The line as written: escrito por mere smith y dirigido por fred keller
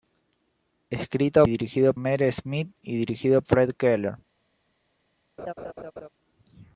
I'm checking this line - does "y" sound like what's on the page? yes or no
yes